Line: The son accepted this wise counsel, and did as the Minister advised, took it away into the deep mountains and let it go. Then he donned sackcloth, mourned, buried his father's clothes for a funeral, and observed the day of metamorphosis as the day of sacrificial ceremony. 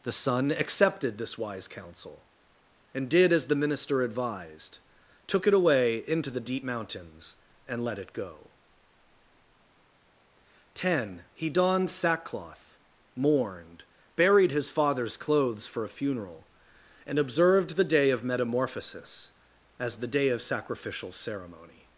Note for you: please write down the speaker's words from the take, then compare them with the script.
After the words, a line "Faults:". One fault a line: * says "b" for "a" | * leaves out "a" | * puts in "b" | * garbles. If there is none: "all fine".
The son accepted this wise counsel, and did as the Minister advised, took it away into the deep mountains and let it go. Ten he donned sackcloth, mourned, buried his father's clothes for a funeral, and observed the day of metamorphosis as the day of sacrificial ceremony.
Faults:
* says "Ten" for "Then"